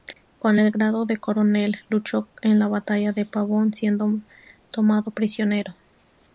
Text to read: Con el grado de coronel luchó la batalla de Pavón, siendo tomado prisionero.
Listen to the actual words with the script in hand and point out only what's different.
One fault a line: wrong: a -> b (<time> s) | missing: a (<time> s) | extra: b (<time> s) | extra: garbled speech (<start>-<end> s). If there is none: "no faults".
extra: en (2.4 s)